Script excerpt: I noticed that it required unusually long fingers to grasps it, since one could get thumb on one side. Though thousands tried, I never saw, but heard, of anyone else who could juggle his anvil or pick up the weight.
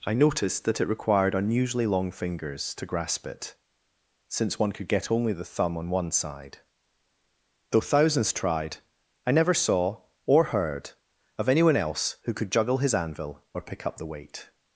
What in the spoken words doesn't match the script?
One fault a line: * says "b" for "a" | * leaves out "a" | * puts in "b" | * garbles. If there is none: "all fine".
* says "grasp" for "grasps"
* puts in "only the"
* says "or" for "but"